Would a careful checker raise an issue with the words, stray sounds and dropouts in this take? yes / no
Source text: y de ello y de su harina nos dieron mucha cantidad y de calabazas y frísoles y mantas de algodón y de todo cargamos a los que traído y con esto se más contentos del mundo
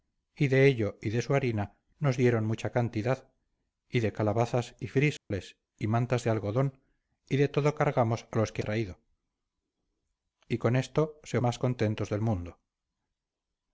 yes